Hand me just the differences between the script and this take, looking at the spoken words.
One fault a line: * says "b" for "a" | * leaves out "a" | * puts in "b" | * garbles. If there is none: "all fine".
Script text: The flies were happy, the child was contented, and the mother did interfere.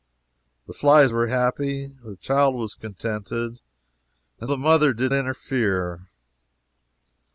all fine